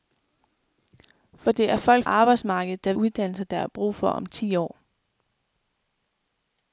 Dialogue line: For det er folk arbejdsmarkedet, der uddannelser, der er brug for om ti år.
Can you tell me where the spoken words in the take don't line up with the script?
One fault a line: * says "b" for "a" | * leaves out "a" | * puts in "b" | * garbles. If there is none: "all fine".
all fine